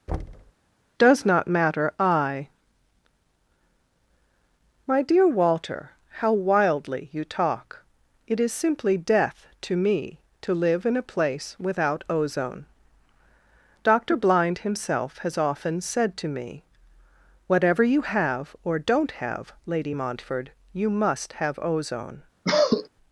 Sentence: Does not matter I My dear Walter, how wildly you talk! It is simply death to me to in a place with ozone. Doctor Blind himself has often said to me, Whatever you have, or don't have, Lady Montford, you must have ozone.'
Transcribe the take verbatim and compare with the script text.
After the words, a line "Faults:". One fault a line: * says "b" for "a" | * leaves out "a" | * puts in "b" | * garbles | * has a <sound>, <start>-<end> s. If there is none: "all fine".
Does not matter I My dear Walter, how wildly you talk! It is simply death to me to live in a place without ozone. Doctor Blind himself has often said to me, Whatever you have, or don't have, Lady Montford, you must have ozone.'
Faults:
* has a thud, 0.1-0.5 s
* puts in "live"
* says "without" for "with"
* has a cough, 22.4-22.9 s